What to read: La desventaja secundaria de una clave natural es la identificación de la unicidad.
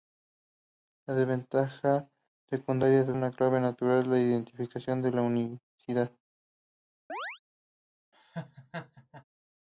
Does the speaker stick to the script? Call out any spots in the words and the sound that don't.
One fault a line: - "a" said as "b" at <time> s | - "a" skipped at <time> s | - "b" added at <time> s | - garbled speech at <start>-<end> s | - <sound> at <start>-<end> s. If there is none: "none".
- chirp at 7.1-7.4 s
- laugh at 8.1-9.2 s